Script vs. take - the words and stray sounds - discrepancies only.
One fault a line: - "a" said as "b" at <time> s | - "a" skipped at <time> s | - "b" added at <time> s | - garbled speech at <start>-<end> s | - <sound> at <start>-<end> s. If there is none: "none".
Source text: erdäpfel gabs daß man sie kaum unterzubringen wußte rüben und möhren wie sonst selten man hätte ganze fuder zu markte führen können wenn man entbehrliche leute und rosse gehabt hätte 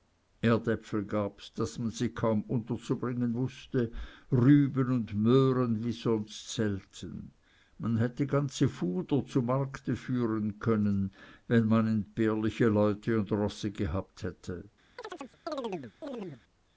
- chirp at 15.0-16.4 s